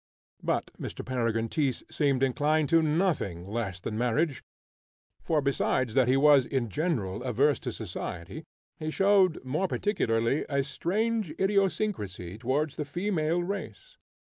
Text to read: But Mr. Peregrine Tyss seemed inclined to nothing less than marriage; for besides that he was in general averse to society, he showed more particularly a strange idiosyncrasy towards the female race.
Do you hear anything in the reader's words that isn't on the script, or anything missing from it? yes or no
no